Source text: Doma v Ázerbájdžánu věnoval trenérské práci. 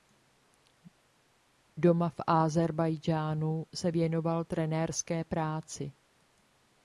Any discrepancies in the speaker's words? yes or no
yes